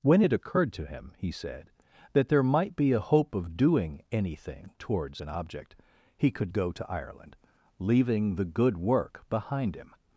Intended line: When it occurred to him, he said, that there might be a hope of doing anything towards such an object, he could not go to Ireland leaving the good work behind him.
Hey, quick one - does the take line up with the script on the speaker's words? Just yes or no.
no